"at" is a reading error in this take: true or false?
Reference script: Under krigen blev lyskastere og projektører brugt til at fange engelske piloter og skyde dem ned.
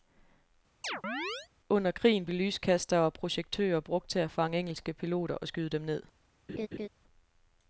false